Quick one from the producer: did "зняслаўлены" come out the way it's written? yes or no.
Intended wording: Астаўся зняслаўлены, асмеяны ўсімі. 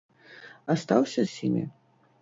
no